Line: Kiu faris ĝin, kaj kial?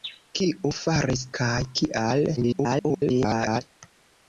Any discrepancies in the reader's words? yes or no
yes